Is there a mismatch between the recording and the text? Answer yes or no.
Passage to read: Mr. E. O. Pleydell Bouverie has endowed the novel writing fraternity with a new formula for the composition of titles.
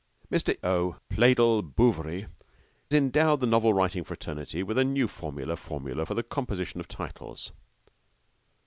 yes